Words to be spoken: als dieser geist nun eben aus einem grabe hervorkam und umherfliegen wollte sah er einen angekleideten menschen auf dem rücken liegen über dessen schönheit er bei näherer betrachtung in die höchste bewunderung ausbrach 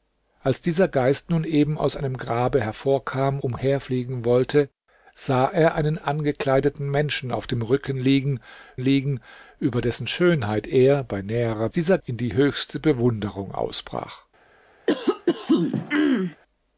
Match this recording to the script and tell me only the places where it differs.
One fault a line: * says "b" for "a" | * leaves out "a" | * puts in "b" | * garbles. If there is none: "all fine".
* leaves out "und"
* puts in "liegen"
* says "dieser" for "betrachtung"